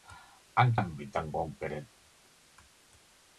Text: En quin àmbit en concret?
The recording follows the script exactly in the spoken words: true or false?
false